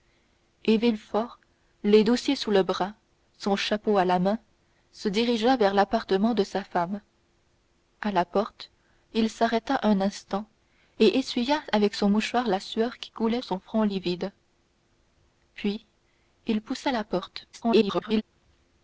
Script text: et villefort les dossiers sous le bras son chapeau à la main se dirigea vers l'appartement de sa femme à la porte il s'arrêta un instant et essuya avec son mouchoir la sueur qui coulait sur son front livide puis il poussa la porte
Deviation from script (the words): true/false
true